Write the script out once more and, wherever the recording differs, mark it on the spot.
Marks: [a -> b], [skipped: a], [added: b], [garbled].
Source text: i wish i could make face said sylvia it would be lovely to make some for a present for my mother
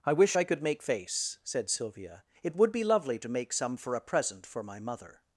i wish i could make face said sylvia it would be lovely to make some for a present for my mother